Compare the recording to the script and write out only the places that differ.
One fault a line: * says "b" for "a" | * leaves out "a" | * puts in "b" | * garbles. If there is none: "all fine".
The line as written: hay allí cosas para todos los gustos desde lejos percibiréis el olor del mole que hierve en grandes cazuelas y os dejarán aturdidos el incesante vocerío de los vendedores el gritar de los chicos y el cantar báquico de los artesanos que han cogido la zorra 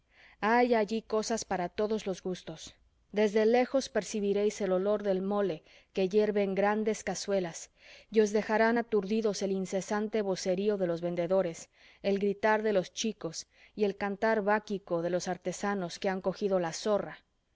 all fine